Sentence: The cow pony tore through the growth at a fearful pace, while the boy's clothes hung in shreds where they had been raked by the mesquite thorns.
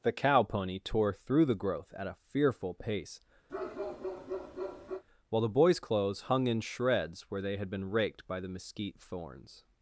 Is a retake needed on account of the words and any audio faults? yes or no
yes